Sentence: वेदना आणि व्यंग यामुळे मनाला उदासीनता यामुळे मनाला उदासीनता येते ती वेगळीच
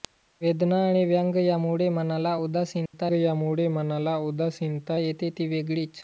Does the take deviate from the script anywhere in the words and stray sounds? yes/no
yes